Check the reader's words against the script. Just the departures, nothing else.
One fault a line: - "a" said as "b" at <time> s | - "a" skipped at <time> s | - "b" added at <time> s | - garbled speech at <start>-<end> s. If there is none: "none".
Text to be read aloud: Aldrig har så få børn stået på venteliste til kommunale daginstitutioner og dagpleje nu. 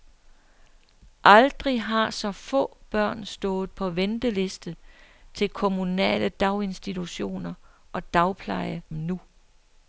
none